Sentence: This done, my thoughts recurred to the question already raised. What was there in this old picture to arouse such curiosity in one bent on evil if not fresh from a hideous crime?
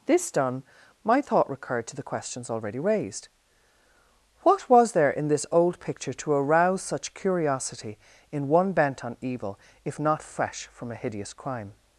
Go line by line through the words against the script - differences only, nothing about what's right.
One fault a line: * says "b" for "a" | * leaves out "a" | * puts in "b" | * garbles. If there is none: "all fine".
* says "thought" for "thoughts"
* says "questions" for "question"